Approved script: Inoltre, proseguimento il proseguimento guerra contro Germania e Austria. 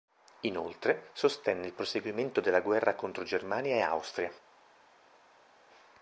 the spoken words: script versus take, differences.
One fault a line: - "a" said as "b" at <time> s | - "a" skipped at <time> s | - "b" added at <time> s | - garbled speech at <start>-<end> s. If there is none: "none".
- "proseguimento" said as "sostenne" at 1.1 s
- "della" added at 2.4 s